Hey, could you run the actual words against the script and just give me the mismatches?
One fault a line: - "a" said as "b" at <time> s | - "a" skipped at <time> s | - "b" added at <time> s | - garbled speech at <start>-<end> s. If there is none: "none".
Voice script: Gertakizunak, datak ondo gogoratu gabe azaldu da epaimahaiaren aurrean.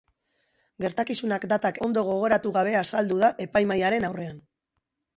none